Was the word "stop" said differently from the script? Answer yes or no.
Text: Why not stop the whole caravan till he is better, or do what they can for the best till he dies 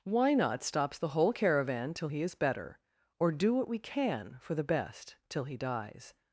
yes